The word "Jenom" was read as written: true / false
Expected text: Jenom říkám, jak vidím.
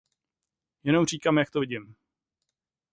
true